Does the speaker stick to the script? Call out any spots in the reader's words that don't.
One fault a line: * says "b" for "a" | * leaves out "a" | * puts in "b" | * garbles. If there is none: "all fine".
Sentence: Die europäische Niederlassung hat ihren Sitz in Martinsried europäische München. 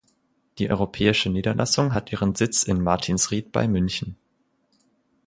* says "bei" for "europäische"